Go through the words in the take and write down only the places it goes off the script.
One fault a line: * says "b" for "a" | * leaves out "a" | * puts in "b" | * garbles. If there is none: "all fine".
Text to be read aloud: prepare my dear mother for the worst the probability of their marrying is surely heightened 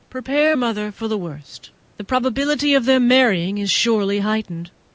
* leaves out "my dear"